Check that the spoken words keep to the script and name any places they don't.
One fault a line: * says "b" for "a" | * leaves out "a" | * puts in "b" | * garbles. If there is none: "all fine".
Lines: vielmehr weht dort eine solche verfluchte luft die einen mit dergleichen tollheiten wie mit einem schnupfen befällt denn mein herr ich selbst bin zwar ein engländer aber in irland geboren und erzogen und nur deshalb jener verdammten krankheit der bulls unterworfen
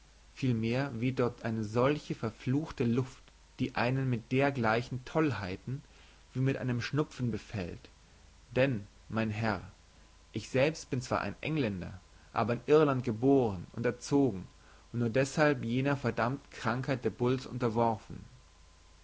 all fine